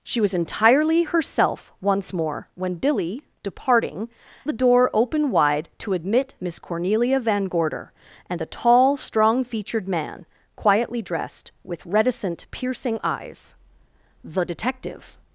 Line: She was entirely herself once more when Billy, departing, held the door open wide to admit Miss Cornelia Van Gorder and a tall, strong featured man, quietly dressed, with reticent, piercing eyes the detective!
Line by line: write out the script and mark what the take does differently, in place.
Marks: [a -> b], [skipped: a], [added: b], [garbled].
She was entirely herself once more when Billy, departing, [skipped: held] the door open wide to admit Miss Cornelia Van Gorder and a tall, strong featured man, quietly dressed, with reticent, piercing eyes the detective!